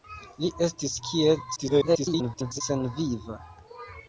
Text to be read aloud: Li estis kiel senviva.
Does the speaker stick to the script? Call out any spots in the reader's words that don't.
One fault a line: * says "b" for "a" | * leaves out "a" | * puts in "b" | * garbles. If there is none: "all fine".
* garbles